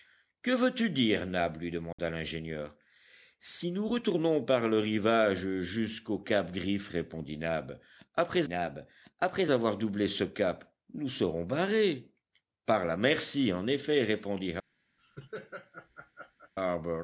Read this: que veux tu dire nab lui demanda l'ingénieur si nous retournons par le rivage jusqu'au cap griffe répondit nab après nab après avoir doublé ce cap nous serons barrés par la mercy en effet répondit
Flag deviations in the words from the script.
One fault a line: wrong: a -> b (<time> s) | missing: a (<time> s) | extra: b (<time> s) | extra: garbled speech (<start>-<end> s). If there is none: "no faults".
no faults